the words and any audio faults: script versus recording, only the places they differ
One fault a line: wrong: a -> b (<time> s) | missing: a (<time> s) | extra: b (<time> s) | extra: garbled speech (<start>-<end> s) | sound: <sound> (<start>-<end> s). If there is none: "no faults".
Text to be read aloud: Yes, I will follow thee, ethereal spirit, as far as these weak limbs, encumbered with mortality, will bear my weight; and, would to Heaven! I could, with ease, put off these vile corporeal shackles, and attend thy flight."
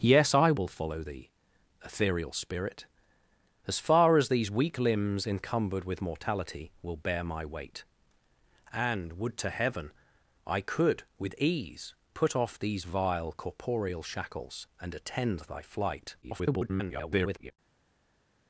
extra: garbled speech (16.2-17.5 s)